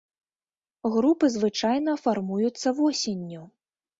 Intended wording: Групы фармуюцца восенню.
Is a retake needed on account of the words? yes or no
yes